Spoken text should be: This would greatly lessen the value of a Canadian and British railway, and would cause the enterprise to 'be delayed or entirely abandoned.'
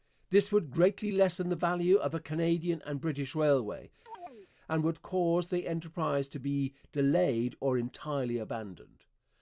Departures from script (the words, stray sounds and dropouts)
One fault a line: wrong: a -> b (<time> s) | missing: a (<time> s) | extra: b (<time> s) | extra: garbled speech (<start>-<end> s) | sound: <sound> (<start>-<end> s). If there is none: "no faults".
sound: chirp (4.1-4.5 s)